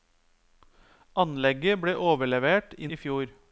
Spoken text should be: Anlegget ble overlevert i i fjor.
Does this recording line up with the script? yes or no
yes